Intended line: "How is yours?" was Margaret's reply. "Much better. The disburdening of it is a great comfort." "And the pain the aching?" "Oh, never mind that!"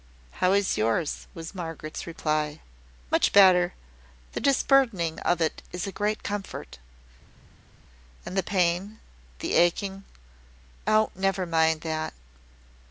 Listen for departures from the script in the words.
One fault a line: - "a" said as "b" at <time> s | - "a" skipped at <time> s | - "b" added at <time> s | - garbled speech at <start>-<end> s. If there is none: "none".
none